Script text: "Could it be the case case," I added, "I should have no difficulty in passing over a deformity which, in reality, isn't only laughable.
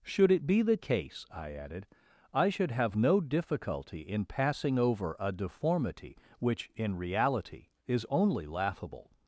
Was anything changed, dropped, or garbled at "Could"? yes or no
yes